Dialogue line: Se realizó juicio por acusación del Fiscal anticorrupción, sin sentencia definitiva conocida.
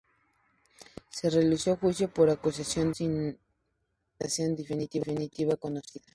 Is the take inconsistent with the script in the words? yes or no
yes